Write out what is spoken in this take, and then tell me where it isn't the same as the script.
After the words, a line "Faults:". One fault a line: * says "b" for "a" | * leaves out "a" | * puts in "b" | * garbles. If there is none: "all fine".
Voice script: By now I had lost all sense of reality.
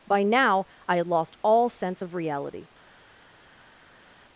By now I had lost all sense of reality.
Faults:
all fine